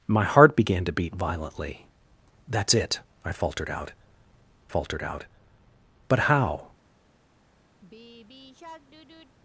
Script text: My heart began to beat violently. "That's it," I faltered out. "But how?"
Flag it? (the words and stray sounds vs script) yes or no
yes